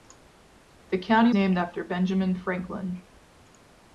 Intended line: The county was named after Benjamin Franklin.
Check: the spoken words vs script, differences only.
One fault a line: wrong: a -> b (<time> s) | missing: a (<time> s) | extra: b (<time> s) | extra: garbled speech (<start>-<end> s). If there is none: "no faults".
missing: was (1.3 s)